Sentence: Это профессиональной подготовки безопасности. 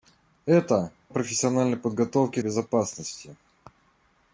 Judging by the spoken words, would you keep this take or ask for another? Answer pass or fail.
pass